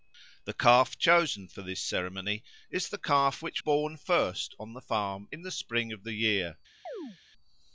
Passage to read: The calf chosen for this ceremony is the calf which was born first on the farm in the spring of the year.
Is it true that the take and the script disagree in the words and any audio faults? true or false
true